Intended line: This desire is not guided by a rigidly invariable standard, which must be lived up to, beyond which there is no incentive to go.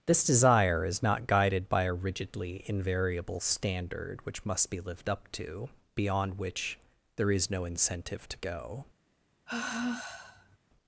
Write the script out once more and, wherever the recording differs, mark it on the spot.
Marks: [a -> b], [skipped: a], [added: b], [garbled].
This desire is not guided by a rigidly invariable standard, which must be lived up to, beyond which there is no incentive to go.